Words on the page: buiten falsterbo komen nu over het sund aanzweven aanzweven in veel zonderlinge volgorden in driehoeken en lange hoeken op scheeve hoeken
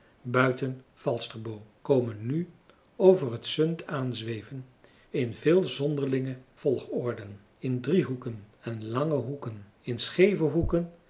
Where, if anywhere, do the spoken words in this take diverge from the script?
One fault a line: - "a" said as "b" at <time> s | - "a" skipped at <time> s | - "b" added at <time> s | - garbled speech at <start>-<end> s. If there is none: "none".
- "aanzweven" skipped at 4.6 s
- "op" said as "in" at 9.8 s